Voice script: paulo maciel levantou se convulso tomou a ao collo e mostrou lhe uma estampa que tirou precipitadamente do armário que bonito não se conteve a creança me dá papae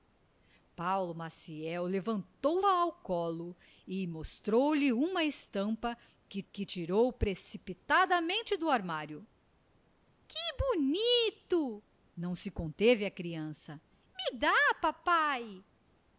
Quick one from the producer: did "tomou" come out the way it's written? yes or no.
no